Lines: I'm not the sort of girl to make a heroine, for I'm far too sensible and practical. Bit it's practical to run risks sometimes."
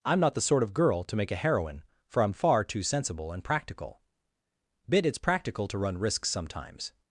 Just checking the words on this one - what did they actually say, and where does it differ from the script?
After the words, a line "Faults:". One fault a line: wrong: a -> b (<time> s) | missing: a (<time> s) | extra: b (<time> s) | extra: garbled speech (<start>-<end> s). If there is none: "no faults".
I'm not the sort of girl to make a heroine, for I'm far too sensible and practical. Bit it's practical to run risks sometimes."
Faults:
no faults